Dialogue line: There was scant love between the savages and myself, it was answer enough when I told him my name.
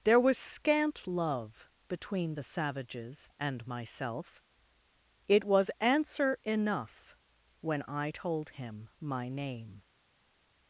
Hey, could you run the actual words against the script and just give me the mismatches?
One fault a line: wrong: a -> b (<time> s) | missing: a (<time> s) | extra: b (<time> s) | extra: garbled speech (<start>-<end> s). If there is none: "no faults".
no faults